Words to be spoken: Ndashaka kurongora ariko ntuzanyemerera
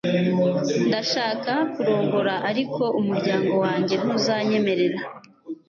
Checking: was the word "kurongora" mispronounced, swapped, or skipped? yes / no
no